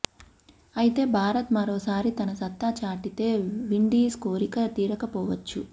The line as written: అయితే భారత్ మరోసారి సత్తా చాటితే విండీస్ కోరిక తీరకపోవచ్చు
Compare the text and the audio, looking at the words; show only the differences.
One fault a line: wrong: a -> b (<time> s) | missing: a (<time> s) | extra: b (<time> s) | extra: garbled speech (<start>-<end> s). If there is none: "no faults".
extra: తన (2.2 s)